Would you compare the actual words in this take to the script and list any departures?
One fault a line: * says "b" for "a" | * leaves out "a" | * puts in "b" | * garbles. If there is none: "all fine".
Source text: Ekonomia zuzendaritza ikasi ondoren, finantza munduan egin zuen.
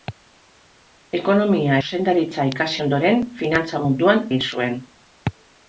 all fine